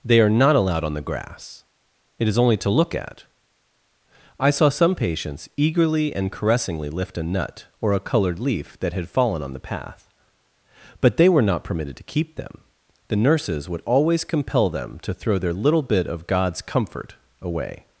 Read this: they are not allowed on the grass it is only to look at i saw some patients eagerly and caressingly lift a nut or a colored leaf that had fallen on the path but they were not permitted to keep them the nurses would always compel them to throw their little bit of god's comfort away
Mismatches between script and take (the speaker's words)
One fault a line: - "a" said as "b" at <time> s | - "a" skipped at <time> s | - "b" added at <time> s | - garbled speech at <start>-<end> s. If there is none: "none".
none